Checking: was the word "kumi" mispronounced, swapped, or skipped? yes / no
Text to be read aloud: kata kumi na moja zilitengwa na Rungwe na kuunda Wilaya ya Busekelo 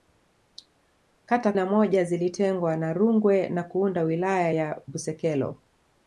yes